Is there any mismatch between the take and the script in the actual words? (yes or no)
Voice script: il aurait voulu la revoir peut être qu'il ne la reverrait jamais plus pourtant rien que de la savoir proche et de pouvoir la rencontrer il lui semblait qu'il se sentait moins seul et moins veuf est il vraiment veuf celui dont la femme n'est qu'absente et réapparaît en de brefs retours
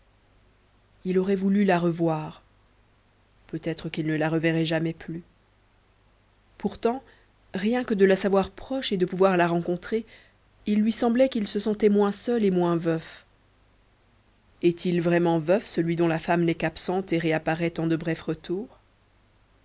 no